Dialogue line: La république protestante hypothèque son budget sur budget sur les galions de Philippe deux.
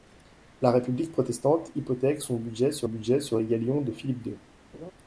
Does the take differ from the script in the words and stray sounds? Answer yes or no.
yes